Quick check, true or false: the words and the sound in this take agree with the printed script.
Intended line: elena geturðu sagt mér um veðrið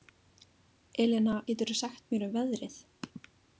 true